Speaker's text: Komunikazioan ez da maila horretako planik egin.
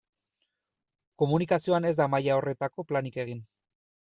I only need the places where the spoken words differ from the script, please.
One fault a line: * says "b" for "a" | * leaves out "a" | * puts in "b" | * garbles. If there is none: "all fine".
all fine